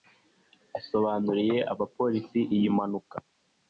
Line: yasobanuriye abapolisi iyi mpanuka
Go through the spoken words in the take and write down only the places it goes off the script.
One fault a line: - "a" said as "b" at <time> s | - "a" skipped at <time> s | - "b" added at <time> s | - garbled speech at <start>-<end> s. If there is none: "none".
none